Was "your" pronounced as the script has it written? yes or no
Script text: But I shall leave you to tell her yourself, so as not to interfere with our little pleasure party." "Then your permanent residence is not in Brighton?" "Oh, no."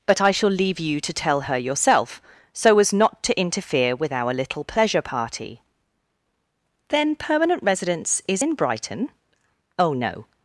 no